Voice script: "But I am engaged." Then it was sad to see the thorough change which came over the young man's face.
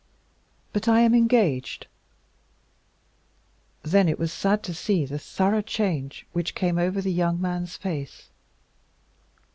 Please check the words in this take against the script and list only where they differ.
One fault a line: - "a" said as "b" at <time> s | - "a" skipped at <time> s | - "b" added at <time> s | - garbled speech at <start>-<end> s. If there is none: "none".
none